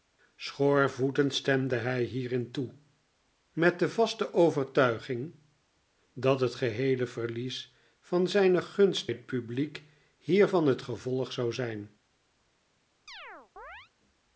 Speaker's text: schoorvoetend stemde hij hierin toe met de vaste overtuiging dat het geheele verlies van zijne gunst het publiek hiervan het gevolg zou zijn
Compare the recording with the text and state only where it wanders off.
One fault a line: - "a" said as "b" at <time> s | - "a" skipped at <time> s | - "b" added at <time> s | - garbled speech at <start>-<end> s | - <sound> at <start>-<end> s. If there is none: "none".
- chirp at 13.1-13.9 s